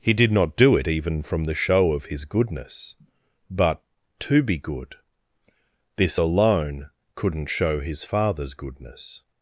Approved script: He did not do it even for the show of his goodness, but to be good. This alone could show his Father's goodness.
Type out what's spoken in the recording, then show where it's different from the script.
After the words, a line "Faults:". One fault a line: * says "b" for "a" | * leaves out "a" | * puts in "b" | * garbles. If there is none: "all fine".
He did not do it even from the show of his goodness, but to be good. This alone couldn't show his Father's goodness.
Faults:
* says "from" for "for"
* says "couldn't" for "could"